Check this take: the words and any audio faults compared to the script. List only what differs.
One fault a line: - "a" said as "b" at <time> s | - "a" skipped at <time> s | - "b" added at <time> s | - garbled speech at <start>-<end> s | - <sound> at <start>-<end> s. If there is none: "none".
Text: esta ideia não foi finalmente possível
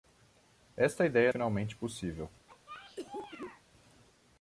- "não foi" skipped at 1.3 s
- cough at 2.5-3.6 s